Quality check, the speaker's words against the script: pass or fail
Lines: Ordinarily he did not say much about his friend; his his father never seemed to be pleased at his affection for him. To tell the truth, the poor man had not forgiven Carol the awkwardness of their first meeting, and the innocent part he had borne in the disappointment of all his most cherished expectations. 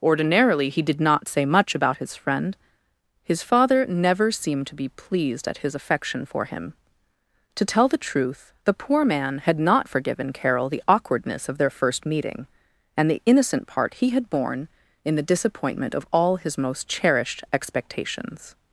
fail